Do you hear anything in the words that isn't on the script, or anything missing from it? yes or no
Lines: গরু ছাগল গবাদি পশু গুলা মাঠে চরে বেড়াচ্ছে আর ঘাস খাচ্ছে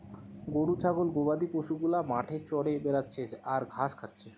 no